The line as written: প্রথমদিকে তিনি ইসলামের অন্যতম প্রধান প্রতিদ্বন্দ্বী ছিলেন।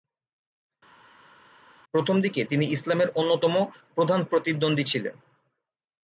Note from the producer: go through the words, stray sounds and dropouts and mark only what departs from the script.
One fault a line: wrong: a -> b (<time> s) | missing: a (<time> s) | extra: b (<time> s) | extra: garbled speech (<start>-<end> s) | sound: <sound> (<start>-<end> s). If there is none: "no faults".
no faults